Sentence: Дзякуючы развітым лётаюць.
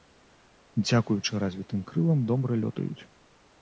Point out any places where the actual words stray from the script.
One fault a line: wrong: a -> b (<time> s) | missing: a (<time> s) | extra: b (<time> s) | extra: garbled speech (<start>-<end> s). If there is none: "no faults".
extra: крылам добра (1.9 s)